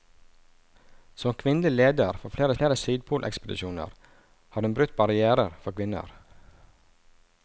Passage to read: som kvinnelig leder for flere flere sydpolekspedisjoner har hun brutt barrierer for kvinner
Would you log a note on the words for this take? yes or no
no